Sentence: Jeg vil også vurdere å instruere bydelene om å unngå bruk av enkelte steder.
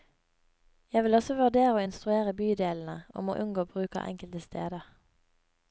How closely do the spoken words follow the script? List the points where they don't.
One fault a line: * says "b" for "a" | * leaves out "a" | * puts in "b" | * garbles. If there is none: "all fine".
all fine